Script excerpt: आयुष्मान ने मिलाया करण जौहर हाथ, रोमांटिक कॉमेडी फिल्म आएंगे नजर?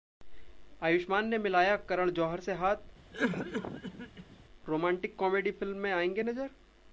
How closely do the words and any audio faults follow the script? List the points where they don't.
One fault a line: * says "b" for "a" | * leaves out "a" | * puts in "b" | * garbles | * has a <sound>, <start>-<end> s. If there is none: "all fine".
* puts in "से"
* has a cough, 3.1-4.4 s
* puts in "में"